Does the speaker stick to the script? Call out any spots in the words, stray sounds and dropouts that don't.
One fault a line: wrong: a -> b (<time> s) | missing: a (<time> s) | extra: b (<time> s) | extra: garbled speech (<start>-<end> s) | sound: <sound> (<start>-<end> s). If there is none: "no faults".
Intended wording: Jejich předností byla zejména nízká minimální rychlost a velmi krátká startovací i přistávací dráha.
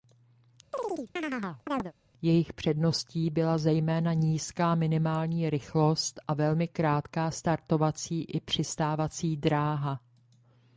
sound: chirp (0.7-1.9 s)